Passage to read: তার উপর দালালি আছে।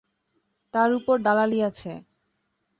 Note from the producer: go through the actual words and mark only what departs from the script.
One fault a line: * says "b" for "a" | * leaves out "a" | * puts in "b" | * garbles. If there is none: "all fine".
all fine